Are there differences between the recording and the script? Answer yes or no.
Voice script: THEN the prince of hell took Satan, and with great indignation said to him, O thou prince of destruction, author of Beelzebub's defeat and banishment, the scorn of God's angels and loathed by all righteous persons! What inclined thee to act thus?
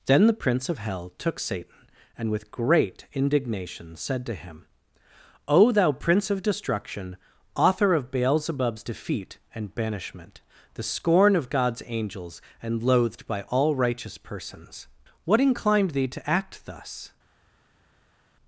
no